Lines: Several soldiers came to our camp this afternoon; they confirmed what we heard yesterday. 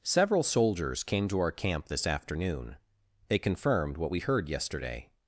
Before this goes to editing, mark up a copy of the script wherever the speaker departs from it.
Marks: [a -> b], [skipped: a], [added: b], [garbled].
Several soldiers came to our camp this afternoon; they confirmed what we heard yesterday.